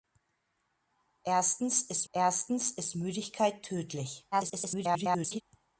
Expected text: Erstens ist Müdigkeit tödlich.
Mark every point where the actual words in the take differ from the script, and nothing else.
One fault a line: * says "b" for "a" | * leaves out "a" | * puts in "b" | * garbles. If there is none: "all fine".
* puts in "erstens ist"
* garbles